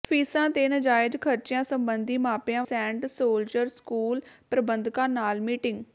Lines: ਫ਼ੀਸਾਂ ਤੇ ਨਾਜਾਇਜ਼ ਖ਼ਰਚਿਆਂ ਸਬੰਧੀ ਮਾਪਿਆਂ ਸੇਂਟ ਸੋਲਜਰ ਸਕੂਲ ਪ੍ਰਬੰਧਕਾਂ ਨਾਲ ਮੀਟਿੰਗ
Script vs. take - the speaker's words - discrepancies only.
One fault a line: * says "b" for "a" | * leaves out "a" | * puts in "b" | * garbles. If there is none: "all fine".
all fine